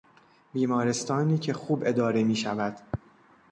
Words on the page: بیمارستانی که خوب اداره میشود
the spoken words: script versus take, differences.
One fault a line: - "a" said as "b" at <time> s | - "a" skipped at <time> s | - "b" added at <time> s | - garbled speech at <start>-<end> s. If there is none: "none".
none